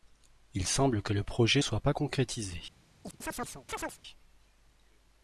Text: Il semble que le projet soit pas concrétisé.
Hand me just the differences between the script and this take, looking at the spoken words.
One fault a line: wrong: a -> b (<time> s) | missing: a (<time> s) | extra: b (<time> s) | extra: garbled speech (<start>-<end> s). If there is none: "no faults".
no faults